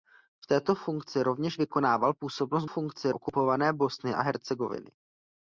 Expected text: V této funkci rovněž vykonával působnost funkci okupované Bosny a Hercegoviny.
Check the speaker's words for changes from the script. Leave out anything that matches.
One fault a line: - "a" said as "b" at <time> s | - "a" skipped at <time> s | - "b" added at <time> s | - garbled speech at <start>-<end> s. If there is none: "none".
none